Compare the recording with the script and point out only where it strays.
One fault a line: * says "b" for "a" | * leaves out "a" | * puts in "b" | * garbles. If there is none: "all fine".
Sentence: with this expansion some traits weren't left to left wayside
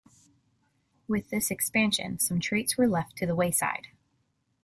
* says "were" for "weren't"
* says "the" for "left"